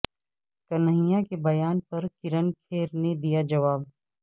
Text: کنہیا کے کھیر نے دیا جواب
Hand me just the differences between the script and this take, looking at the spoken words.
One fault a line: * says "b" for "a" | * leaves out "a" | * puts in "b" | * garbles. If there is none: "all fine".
* puts in "بیان پر کرن"